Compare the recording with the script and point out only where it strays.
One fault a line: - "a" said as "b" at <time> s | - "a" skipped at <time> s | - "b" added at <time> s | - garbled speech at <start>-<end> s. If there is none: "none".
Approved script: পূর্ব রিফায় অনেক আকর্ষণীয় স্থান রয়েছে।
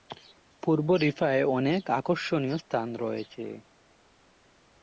none